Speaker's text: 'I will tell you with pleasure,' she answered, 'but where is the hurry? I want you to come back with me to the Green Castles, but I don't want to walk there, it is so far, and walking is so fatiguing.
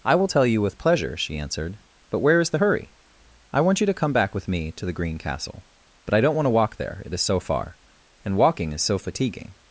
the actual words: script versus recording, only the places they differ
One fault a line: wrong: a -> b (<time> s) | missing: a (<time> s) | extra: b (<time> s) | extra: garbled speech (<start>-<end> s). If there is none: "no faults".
wrong: Castles -> Castle (5.2 s)